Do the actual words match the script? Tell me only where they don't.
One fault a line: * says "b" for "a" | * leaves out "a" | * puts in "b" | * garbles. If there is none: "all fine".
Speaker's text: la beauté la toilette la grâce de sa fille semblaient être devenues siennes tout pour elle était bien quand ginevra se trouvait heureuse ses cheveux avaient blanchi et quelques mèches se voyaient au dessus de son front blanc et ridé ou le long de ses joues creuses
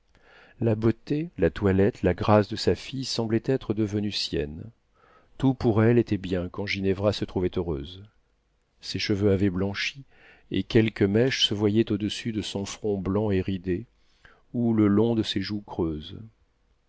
all fine